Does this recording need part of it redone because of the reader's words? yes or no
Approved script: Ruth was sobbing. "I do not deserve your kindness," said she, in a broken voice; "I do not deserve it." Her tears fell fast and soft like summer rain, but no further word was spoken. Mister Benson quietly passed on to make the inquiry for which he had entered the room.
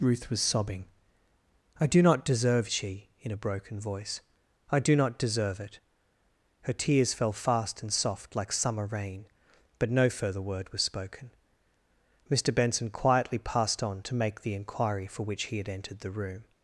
yes